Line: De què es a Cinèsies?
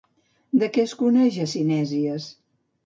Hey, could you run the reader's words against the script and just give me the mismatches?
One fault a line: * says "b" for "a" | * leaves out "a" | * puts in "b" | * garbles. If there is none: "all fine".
* puts in "coneix"